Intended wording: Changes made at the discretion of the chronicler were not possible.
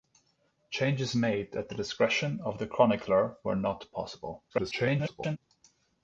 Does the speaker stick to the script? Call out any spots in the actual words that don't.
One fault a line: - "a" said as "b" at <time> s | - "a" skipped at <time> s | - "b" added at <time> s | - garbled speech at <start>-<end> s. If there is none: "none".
- garbled speech at 4.5-5.4 s